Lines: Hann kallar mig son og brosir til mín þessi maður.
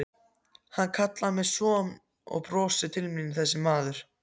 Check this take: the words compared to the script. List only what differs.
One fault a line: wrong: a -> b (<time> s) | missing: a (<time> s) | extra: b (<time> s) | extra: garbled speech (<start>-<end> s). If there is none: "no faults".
no faults